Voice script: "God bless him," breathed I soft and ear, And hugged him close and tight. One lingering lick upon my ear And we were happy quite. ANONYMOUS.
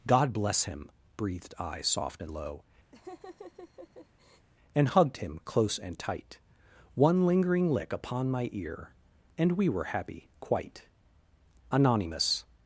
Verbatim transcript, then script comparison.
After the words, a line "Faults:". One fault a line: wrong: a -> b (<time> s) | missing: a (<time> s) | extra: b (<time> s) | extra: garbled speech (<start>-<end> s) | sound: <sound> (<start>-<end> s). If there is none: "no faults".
"God bless him," breathed I soft and low, And hugged him close and tight. One lingering lick upon my ear And we were happy quite. ANONYMOUS.
Faults:
wrong: ear -> low (2.3 s)
sound: laugh (2.9-4.5 s)